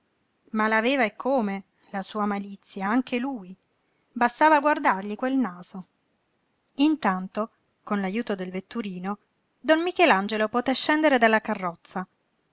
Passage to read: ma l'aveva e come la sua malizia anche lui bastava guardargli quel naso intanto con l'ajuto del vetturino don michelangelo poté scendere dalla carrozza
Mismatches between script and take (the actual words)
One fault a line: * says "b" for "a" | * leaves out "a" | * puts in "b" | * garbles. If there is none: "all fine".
all fine